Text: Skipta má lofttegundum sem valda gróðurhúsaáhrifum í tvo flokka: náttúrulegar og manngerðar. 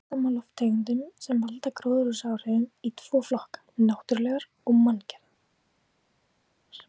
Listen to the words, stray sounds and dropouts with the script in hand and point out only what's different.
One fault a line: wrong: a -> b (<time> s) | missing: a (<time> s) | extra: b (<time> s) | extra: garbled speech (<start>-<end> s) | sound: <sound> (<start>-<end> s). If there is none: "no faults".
no faults